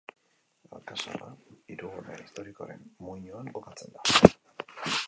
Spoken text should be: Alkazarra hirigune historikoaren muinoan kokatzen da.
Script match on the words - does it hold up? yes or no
yes